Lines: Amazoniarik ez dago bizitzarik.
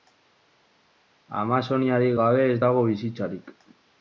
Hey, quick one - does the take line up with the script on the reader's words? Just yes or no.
no